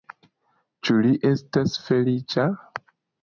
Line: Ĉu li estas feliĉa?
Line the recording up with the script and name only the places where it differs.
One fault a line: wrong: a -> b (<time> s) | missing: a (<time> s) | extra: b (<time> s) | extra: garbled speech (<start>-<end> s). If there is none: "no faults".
no faults